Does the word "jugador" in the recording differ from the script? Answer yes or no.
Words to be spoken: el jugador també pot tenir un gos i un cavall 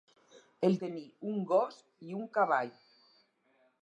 yes